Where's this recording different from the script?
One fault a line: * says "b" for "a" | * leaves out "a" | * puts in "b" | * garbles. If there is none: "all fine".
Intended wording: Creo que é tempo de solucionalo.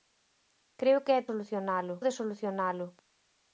* says "solucionalo" for "tempo"